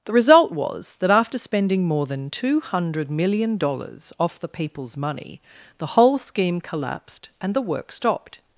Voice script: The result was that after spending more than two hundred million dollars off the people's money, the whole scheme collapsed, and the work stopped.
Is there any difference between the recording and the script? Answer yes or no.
no